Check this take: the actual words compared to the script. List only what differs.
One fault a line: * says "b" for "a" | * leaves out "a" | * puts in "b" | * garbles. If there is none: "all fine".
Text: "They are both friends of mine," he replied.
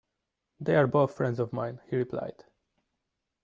all fine